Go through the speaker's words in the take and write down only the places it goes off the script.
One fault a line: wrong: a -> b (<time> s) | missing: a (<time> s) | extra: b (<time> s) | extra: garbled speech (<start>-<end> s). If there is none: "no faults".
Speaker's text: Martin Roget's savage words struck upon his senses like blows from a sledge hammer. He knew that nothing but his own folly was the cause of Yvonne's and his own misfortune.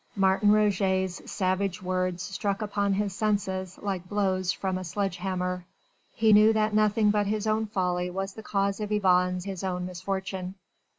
missing: and (9.5 s)